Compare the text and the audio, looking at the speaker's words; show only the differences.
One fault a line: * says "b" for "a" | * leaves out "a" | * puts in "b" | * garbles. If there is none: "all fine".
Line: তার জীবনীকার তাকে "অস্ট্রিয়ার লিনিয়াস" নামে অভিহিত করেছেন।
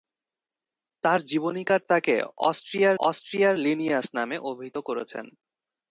* puts in "অস্ট্রিয়ার"